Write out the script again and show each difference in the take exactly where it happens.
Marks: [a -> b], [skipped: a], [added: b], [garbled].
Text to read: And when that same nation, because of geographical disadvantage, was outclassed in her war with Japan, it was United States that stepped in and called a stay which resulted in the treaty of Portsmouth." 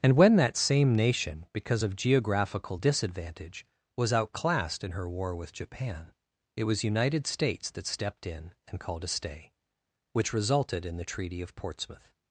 And when that same nation, because of geographical disadvantage, was outclassed in her war with Japan, it was United States that stepped in and called a stay which resulted in the treaty of Portsmouth."